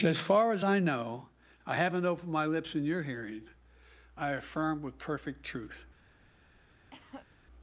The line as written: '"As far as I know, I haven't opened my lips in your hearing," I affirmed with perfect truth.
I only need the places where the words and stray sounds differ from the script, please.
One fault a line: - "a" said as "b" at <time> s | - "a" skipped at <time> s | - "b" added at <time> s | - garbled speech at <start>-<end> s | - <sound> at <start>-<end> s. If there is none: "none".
- "affirmed" said as "affirm" at 4.3 s
- cough at 6.9-7.3 s